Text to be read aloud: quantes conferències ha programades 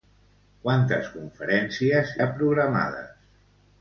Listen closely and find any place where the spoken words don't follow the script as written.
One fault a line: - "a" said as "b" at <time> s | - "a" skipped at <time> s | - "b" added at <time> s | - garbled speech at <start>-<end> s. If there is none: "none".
none